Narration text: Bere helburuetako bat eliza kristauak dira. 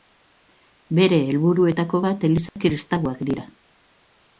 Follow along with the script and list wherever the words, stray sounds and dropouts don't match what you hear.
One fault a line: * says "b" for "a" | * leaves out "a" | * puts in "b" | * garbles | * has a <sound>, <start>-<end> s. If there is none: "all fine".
* has a dropout, 2.5-2.6 s